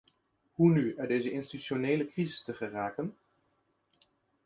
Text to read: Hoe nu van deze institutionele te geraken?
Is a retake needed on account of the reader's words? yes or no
yes